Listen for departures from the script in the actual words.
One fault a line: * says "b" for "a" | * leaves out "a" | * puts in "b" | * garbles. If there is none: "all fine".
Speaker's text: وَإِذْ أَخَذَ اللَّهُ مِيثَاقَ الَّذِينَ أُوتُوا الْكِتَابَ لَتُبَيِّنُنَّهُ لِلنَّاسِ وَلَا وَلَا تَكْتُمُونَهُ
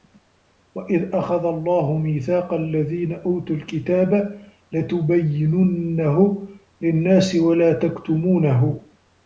* leaves out "وَلَا"